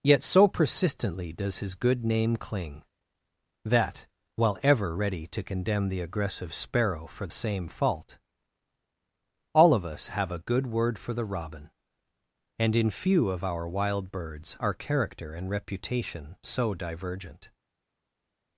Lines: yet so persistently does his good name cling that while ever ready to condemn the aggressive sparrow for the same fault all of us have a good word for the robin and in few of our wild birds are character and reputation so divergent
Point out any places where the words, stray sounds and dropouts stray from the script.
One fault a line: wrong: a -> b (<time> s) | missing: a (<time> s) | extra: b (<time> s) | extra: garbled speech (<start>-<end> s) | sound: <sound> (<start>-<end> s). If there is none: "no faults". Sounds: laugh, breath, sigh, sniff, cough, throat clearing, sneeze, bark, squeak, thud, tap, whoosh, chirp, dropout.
missing: the (7.3 s)